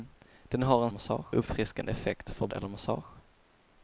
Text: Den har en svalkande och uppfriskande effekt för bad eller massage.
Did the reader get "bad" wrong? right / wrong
wrong